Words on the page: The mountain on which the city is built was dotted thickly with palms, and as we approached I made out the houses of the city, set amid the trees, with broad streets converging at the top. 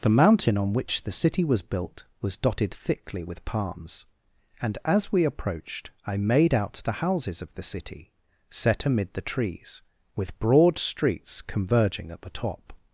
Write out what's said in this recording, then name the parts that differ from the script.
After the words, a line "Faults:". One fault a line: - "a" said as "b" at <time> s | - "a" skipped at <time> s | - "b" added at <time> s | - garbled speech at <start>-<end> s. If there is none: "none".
The mountain on which the city was built was dotted thickly with palms, and as we approached I made out the houses of the city, set amid the trees, with broad streets converging at the top.
Faults:
- "is" said as "was" at 1.4 s